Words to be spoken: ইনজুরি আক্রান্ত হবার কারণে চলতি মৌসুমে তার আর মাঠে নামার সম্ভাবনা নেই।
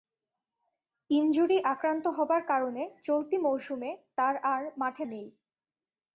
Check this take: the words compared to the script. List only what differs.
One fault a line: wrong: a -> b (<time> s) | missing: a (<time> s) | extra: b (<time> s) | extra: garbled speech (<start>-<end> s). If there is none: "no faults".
missing: নামার সম্ভাবনা (5.0 s)